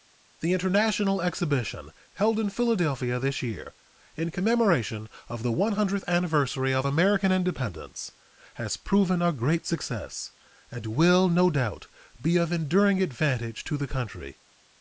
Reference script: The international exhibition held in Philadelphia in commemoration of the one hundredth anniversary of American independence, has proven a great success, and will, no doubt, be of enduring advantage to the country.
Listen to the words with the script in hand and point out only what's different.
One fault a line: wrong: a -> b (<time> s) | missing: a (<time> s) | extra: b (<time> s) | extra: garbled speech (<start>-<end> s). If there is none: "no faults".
extra: this year (3.2 s)